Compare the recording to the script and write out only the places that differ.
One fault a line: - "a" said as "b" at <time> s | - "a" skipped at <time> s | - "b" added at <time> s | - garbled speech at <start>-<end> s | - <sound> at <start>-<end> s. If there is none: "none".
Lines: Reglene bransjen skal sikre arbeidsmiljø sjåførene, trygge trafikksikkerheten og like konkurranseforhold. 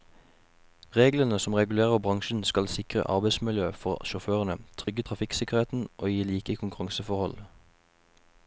- "som regulerer" added at 1.4 s
- "for" added at 3.7 s
- dropout at 4.8-4.9 s
- "gi" added at 6.1 s